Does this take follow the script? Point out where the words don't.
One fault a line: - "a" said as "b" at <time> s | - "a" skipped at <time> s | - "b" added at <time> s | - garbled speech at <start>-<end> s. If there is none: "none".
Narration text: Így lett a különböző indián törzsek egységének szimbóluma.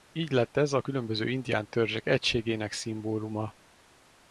- "ez" added at 0.6 s